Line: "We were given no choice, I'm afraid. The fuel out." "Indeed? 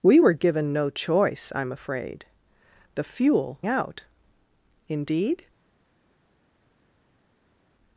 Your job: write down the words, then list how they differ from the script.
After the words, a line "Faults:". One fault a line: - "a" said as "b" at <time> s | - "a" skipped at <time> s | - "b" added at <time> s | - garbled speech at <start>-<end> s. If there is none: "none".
"We were given no choice, I'm afraid. The fuel out." "Indeed?
Faults:
none